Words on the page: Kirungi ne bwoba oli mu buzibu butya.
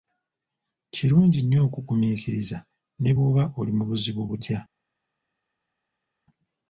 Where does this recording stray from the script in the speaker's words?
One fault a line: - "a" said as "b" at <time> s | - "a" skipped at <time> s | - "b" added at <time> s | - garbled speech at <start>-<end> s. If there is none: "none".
- "nnyo okugumiikiriza" added at 1.4 s